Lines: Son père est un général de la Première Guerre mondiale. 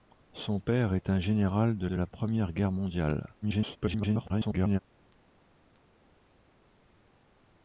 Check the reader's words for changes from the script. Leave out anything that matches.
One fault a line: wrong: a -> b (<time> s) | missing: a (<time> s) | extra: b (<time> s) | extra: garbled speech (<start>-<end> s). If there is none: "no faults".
extra: de (1.8 s)
extra: garbled speech (3.4-4.8 s)